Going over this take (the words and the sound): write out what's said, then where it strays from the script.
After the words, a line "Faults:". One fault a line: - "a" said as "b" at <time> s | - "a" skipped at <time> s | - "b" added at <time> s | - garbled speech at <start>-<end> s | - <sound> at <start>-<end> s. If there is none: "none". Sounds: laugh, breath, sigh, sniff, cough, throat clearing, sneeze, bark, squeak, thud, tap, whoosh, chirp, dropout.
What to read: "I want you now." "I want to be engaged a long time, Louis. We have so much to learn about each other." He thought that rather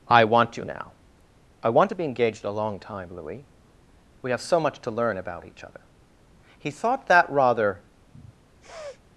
"I want you now." "I want to be engaged a long time, Louis. We have so much to learn about each other." He thought that rather
Faults:
- sniff at 8.1-9.0 s